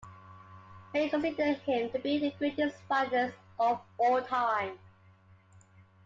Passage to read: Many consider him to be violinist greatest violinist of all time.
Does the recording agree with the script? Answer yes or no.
no